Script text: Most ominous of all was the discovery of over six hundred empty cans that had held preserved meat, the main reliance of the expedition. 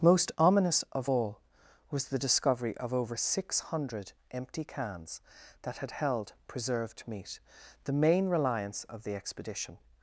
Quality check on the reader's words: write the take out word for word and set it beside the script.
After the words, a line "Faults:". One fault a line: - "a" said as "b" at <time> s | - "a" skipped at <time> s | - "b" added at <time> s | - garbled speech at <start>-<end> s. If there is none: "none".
Most ominous of all was the discovery of over six hundred empty cans that had held preserved meat, the main reliance of the expedition.
Faults:
none